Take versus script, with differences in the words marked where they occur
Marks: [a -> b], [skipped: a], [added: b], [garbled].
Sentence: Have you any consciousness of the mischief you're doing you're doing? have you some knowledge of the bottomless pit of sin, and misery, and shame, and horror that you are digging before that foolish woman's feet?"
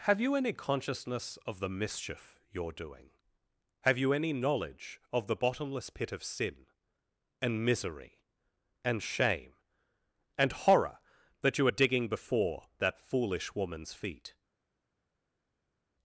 Have you any consciousness of the mischief you're doing [skipped: you're doing?] have you [some -> any] knowledge of the bottomless pit of sin, and misery, and shame, and horror that you are digging before that foolish woman's feet?"